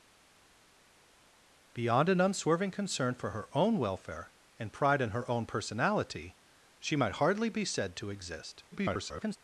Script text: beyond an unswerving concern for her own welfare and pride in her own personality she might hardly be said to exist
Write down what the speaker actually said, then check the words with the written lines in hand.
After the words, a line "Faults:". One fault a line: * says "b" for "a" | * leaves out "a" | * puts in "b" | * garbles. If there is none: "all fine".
beyond an unswerving concern for her own welfare and pride in her own personality she might hardly be said to exist [garbled]
Faults:
* garbles